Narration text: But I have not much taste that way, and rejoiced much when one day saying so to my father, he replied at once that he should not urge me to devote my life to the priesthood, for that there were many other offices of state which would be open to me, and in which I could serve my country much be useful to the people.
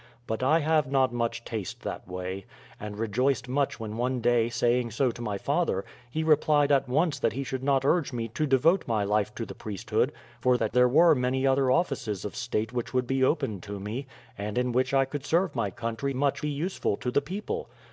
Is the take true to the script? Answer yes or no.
yes